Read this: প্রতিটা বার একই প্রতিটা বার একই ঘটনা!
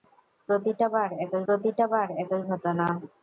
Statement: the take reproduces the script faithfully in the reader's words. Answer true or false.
true